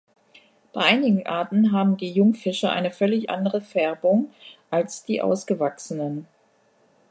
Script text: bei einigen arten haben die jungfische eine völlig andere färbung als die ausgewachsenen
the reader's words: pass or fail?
pass